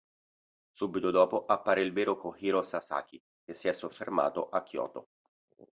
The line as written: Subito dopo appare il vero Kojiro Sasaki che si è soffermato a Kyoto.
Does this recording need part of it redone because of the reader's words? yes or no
no